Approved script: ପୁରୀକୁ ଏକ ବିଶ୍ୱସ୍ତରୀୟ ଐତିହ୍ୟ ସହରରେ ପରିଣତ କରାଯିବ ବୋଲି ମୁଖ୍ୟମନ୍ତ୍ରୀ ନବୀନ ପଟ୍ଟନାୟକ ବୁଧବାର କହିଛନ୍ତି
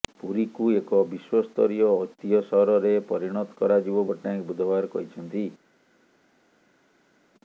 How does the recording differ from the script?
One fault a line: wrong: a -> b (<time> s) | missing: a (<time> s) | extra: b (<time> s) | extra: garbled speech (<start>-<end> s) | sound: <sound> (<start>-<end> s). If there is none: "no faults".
missing: ବୋଲି ମୁଖ୍ୟମନ୍ତ୍ରୀ ନବୀନ (4.1 s)